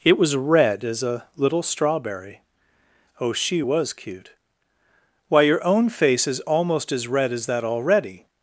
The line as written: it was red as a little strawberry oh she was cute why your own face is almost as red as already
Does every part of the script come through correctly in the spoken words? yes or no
no